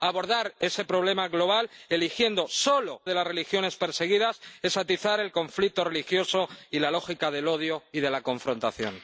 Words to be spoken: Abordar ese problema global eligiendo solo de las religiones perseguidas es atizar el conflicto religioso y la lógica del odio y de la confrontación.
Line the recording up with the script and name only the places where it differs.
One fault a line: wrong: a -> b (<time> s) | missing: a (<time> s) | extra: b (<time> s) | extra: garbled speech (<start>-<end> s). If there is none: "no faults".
no faults